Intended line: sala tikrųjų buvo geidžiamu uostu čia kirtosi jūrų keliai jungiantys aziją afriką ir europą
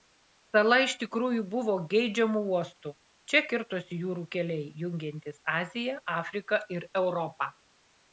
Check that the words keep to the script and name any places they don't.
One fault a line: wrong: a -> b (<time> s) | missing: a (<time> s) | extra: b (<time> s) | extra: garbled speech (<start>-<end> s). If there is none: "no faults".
extra: iš (0.8 s)